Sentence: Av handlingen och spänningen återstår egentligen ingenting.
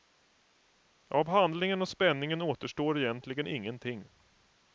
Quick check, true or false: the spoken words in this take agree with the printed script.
true